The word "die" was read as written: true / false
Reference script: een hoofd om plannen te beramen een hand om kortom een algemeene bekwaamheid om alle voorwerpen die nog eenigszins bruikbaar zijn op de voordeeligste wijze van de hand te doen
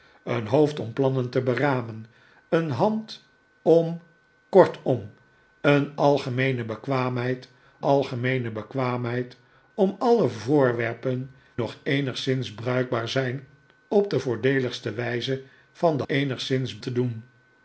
false